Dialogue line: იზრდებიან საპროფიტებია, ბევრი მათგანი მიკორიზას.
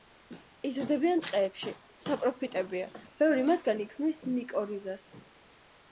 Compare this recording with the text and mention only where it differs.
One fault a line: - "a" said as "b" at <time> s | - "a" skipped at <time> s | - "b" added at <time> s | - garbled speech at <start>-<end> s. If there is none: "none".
- "ტყეებში" added at 1.2 s
- "ქმნის" added at 3.9 s